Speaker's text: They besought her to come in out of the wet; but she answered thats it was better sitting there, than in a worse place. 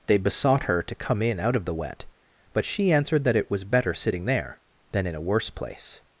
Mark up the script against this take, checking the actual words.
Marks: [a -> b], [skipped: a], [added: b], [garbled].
They besought her to come in out of the wet; but she answered [thats -> that] it was better sitting there, than in a worse place.